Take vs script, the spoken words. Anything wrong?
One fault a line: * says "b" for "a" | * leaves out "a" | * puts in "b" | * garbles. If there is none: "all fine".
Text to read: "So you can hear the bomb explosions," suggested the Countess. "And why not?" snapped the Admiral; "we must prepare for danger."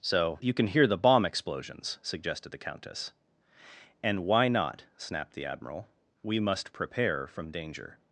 * says "from" for "for"